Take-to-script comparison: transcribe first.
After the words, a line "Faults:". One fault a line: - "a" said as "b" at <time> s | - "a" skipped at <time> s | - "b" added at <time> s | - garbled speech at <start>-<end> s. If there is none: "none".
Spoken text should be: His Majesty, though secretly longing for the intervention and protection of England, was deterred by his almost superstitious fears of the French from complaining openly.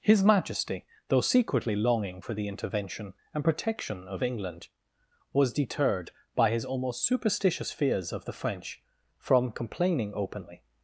His Majesty, though secretly longing for the intervention and protection of England, was deterred by his almost superstitious fears of the French from complaining openly.
Faults:
none